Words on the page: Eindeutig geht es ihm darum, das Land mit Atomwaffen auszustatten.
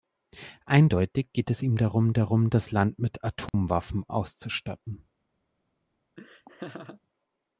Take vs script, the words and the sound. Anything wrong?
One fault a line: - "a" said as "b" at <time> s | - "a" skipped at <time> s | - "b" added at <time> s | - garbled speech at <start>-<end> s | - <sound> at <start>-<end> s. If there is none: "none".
- "darum" added at 2.1 s
- dropout at 3.5-3.5 s
- laugh at 6.2-7.0 s